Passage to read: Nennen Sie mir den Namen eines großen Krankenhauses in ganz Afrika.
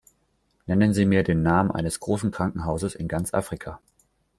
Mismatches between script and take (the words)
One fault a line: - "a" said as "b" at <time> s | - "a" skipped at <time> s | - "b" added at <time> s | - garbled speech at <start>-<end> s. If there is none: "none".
none